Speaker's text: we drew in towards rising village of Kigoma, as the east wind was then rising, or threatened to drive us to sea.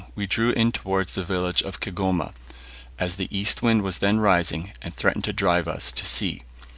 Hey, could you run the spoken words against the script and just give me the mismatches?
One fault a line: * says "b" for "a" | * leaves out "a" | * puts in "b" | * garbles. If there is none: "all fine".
* says "the" for "rising"
* says "and" for "or"